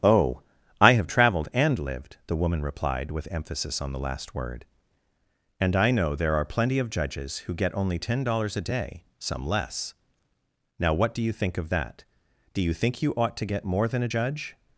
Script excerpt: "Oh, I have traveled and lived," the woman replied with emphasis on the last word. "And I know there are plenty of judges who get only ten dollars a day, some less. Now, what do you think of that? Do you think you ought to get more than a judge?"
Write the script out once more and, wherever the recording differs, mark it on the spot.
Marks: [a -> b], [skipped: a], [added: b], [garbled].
"Oh, I have traveled and lived," the woman replied with emphasis on the last word. "And I know there are plenty of judges who get only ten dollars a day, some less. Now, what do you think of that? Do you think you ought to get more than a judge?"